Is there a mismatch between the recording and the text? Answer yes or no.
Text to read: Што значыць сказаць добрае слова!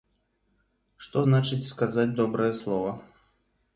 no